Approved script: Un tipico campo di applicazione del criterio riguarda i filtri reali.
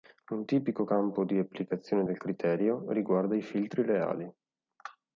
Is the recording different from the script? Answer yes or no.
no